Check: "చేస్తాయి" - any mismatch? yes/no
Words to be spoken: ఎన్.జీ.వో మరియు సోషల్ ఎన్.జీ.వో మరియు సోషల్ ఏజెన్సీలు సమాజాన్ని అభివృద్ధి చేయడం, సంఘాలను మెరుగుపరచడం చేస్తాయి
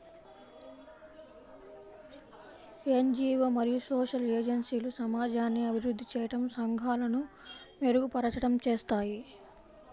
no